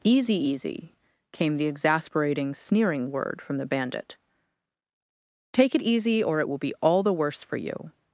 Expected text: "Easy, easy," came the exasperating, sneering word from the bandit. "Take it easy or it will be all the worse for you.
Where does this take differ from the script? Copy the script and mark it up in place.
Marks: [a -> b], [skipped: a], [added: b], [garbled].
"Easy, easy," came the exasperating, sneering word from the bandit. "Take it easy or it will be all the worse for you.